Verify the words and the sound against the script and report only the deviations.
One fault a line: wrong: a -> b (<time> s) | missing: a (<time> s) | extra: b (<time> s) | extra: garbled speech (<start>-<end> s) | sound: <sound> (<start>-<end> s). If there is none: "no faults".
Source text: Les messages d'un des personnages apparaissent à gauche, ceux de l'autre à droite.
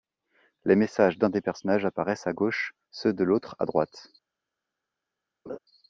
sound: laugh (5.5-5.6 s)